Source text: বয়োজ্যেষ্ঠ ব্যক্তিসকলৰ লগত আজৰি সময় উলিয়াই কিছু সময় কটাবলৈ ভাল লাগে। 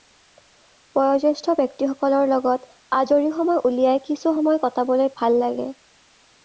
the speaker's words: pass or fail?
pass